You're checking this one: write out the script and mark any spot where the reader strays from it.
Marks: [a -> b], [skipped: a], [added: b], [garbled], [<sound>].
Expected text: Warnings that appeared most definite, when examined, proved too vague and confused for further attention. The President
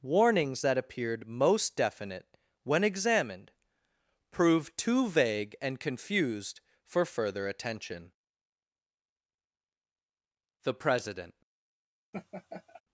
Warnings that appeared most definite, when examined, proved too vague and confused for further attention. The President [laugh]